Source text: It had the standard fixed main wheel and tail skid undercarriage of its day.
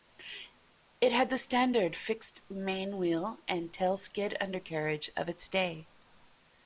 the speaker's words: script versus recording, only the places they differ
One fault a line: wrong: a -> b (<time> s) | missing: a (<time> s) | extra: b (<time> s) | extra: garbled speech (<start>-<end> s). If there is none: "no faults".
no faults